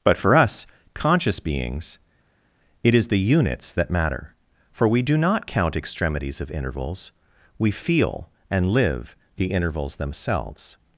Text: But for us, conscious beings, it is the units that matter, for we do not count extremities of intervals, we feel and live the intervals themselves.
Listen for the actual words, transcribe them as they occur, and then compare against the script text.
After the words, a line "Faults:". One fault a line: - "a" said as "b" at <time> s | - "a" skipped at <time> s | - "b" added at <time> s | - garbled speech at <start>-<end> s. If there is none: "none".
But for us, conscious beings, it is the units that matter, for we do not count extremities of intervals, we feel and live the intervals themselves.
Faults:
none